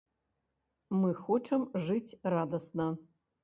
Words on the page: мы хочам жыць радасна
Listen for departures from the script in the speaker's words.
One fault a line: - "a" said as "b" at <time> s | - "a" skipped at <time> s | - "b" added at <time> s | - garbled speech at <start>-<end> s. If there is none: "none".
none